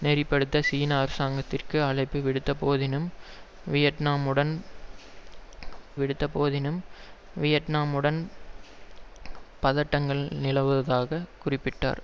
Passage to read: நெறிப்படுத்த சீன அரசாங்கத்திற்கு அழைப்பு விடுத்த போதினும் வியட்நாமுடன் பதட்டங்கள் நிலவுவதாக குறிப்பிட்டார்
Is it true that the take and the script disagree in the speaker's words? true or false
true